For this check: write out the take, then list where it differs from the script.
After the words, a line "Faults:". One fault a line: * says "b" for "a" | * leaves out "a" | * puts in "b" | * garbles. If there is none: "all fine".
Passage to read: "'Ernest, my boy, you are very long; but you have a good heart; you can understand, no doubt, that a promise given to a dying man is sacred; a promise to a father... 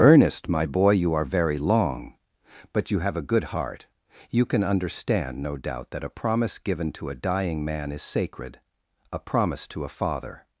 "'Ernest, my boy, you are very long; but you have a good heart; you can understand, no doubt, that a promise given to a dying man is sacred; a promise to a father...
Faults:
all fine